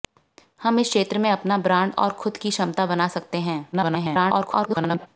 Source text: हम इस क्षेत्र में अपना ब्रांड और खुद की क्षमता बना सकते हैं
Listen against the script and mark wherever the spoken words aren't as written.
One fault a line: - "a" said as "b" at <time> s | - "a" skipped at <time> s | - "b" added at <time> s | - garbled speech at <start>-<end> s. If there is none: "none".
- garbled speech at 3.7-5.1 s